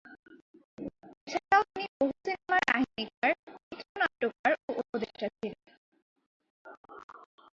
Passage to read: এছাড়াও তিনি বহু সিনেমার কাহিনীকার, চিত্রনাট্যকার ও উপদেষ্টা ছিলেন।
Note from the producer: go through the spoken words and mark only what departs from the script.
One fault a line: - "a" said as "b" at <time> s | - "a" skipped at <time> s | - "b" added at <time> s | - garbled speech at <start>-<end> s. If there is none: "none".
none